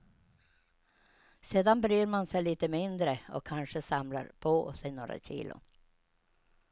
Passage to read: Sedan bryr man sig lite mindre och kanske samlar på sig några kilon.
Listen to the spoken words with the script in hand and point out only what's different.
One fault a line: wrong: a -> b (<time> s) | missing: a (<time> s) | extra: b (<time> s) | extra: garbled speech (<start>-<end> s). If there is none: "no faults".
no faults